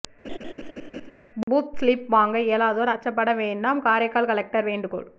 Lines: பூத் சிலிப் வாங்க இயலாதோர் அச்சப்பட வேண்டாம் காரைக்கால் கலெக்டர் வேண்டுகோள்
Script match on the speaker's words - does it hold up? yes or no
yes